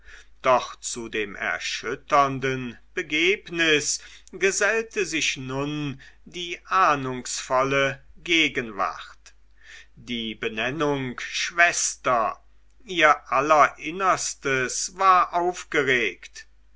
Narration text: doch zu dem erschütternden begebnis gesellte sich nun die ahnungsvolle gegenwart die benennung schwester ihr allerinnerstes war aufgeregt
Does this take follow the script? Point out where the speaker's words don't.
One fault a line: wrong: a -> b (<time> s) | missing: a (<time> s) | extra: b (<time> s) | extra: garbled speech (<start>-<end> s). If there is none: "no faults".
no faults